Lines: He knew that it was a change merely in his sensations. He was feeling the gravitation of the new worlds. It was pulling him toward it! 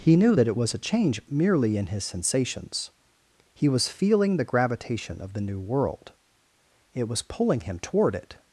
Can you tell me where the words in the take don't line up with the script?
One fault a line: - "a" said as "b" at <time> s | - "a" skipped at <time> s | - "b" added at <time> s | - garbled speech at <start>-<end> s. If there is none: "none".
- "worlds" said as "world" at 5.6 s